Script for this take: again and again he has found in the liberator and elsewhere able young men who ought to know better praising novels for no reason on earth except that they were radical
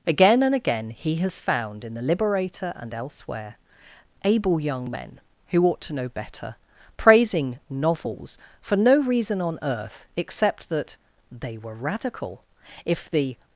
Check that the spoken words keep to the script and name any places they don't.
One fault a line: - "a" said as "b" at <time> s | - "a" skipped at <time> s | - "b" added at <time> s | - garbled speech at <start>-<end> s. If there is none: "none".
- "if the" added at 12.8 s